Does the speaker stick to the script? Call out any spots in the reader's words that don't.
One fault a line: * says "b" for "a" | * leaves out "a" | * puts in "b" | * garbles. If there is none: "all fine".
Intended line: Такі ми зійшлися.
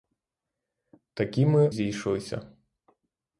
all fine